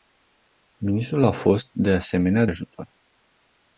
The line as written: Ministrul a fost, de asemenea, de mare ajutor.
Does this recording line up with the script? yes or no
no